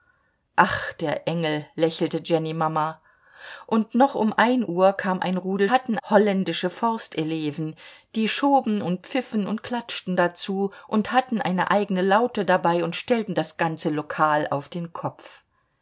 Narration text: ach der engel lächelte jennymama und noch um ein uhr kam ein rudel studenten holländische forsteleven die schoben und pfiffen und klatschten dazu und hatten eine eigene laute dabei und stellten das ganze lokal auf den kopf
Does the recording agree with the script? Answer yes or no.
no